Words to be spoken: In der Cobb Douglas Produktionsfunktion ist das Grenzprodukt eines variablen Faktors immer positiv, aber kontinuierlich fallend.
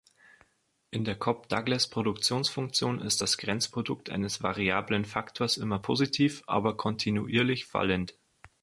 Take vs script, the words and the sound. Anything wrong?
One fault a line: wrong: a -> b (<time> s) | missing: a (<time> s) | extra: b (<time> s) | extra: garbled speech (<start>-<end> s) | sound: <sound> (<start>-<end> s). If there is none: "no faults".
no faults